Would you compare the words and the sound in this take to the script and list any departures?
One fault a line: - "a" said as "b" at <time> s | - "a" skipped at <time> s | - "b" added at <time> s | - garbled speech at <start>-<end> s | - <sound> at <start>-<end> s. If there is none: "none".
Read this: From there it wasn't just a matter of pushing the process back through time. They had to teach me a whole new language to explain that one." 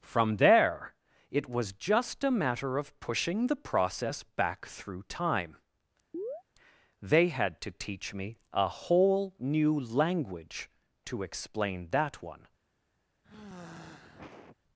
- "wasn't" said as "was" at 1.5 s
- chirp at 6.1-6.4 s
- sigh at 13.2-14.6 s